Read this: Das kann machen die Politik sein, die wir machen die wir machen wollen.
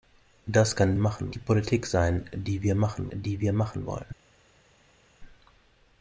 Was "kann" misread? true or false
false